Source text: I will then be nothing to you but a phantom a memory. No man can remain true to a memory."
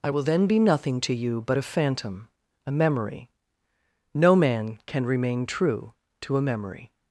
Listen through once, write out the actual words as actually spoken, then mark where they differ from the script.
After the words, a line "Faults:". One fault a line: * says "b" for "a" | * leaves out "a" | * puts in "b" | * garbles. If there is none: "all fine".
I will then be nothing to you but a phantom a memory. No man can remain true to a memory."
Faults:
all fine